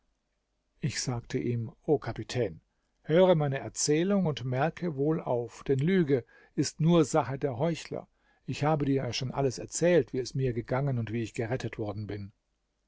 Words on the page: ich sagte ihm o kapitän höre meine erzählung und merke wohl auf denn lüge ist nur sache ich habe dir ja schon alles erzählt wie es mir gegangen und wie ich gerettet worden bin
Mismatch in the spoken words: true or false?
true